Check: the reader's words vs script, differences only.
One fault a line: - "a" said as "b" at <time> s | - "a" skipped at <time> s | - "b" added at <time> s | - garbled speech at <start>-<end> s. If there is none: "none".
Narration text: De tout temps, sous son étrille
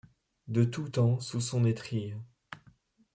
none